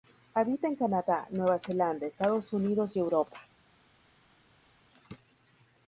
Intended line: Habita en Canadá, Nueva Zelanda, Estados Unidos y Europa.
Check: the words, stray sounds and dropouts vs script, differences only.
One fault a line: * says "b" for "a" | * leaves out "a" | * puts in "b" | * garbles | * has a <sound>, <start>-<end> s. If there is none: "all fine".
all fine